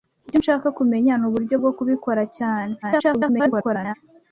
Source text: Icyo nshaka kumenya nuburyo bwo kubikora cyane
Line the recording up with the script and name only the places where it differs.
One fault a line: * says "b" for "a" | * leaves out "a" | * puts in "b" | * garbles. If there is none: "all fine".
* garbles